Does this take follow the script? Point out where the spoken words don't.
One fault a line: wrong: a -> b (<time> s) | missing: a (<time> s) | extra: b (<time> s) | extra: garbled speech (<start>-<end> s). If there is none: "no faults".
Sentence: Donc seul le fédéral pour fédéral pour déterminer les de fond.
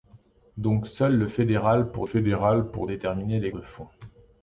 no faults